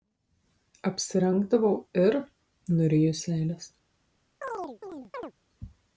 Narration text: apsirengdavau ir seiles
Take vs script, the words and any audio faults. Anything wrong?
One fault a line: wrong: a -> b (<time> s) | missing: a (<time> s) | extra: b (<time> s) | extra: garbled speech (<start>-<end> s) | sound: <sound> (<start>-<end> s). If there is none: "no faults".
extra: nuryju (2.8 s)
sound: chirp (4.4-5.3 s)